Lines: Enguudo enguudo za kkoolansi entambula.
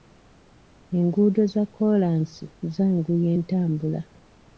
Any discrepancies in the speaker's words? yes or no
yes